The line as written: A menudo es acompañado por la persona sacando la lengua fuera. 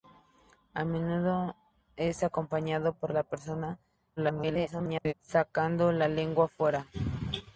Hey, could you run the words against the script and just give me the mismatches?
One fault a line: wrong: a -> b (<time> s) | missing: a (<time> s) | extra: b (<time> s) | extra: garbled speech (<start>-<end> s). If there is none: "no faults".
extra: garbled speech (4.2-5.1 s)